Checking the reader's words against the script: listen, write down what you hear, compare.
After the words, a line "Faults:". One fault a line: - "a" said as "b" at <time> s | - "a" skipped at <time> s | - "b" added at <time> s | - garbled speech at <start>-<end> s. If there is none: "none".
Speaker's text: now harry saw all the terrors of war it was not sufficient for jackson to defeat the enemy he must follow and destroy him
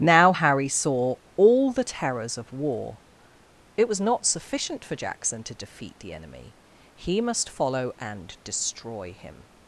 now harry saw all the terrors of war it was not sufficient for jackson to defeat the enemy he must follow and destroy him
Faults:
none